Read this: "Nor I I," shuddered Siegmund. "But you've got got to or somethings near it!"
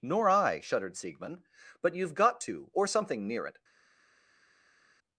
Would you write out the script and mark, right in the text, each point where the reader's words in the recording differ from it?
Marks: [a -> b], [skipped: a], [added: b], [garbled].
"Nor I [skipped: I,"] shuddered Siegmund. "But you've got [skipped: got] to or [somethings -> something] near it!"